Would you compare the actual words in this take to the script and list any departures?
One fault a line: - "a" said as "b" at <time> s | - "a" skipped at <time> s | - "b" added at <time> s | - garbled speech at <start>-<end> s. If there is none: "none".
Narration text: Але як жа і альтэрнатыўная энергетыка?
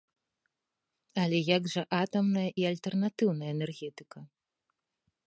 - "атамная" added at 2.0 s